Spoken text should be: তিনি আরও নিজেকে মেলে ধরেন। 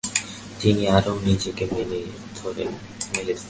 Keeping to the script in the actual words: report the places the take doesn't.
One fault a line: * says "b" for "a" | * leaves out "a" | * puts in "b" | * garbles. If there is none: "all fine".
all fine